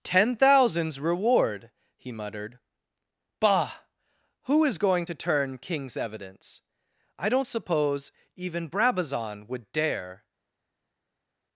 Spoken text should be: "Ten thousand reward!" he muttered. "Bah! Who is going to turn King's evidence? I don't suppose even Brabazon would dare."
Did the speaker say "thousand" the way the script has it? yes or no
no